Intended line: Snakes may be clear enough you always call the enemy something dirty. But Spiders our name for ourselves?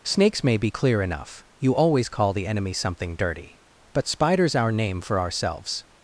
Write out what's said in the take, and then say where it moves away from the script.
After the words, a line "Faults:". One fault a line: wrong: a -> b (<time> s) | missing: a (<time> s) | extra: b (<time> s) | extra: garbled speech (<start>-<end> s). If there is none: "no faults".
Snakes may be clear enough you always call the enemy something dirty. But Spiders our name for ourselves?
Faults:
no faults